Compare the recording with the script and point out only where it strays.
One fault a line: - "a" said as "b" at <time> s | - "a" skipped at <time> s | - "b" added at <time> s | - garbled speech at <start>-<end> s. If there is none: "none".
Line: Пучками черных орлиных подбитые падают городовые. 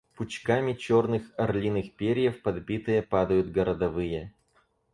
- "перьев" added at 1.9 s